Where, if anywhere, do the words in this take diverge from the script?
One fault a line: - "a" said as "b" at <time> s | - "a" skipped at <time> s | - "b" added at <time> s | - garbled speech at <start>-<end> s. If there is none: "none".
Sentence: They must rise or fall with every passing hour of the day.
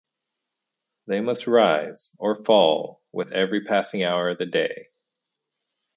none